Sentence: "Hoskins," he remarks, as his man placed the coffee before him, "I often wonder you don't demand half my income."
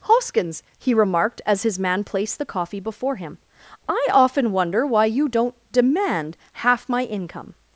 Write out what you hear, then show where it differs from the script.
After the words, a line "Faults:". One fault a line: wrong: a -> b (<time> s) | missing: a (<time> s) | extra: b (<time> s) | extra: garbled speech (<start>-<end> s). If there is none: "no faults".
"Hoskins," he remarked, as his man placed the coffee before him, "I often wonder why you don't demand half my income."
Faults:
wrong: remarks -> remarked (0.9 s)
extra: why (4.8 s)